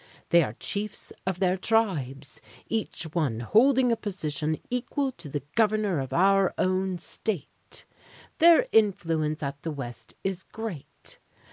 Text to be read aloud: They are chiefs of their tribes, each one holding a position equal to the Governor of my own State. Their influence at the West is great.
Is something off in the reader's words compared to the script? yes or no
yes